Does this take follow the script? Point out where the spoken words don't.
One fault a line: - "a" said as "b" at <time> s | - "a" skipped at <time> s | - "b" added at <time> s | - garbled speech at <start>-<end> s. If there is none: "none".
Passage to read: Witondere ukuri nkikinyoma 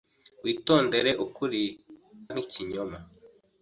none